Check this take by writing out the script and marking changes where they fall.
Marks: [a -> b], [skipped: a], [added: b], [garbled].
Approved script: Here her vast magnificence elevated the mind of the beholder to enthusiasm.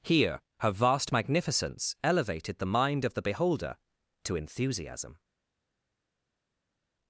Here her vast magnificence elevated the mind of the beholder to enthusiasm.